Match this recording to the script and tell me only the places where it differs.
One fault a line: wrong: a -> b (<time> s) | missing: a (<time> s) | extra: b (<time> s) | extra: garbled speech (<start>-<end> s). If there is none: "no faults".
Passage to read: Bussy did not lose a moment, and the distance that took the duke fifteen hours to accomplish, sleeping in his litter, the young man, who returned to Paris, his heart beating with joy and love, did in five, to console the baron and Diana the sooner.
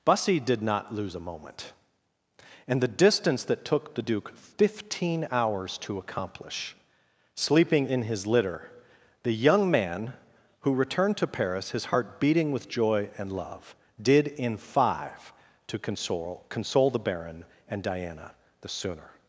extra: console (16.5 s)